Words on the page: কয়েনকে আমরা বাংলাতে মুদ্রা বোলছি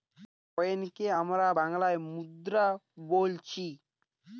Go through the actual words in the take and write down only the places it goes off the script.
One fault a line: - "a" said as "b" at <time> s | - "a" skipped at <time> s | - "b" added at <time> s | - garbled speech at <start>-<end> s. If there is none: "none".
none